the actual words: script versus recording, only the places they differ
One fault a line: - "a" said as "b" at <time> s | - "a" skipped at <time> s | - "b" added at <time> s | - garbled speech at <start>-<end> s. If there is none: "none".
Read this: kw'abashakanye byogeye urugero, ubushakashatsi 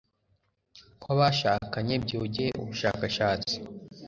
- "urugero" skipped at 2.5 s